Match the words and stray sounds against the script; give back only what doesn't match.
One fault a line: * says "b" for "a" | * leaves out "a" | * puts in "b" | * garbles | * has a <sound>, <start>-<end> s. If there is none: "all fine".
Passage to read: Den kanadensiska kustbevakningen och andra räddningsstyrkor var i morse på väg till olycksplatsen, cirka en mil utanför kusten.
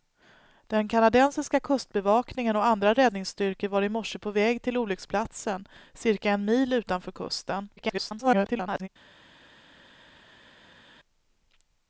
* garbles